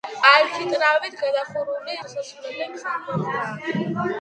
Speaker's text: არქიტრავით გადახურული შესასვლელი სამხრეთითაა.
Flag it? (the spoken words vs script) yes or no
no